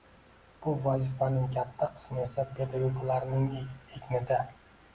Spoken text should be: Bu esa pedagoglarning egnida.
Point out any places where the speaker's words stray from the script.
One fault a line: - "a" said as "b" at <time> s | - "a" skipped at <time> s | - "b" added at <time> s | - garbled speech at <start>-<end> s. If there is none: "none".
- "vazifaning katta qismi" added at 0.8 s